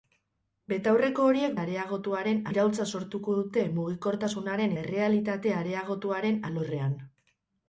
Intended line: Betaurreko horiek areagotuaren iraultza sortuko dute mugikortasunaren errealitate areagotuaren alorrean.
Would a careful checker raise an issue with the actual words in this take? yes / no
no